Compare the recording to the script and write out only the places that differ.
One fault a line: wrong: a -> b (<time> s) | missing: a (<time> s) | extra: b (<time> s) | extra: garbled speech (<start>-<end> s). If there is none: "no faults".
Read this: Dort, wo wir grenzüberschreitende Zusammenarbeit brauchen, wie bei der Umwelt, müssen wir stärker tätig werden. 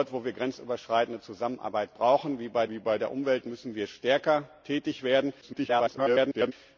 extra: wie bei (2.7 s)
extra: garbled speech (5.4-6.5 s)